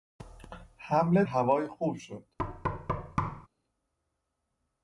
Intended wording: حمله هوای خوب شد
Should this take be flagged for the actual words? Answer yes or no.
no